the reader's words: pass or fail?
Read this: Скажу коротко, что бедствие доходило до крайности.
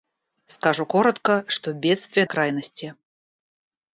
fail